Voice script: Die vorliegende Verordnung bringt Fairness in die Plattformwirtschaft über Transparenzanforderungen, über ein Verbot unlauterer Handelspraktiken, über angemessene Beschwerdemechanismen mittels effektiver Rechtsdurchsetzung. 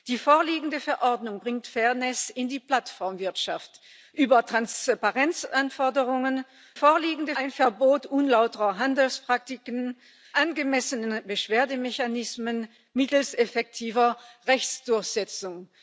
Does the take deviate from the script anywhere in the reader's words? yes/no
yes